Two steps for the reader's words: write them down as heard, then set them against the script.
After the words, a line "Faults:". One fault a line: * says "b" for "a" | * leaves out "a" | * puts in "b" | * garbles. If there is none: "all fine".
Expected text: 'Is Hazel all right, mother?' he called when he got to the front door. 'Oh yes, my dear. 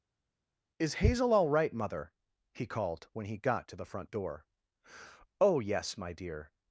'Is Hazel all right, mother?' he called when he got to the front door. 'Oh yes, my dear.
Faults:
all fine